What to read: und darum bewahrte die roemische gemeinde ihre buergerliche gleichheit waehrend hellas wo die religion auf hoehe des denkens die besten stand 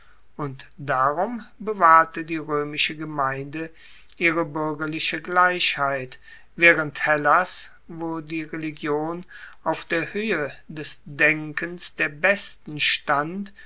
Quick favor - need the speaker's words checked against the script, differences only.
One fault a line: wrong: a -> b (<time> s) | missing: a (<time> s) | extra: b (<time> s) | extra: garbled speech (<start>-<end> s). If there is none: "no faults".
extra: der (9.8 s)
wrong: die -> der (12.0 s)